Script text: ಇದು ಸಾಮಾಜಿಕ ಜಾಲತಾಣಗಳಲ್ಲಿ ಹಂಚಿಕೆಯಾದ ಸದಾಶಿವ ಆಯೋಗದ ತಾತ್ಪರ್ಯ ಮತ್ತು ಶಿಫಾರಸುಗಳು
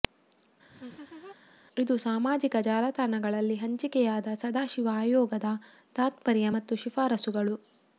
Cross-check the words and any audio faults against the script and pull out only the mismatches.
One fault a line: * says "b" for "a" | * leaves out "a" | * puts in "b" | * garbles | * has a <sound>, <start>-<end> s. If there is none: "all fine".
* has a laugh, 0.7-1.4 s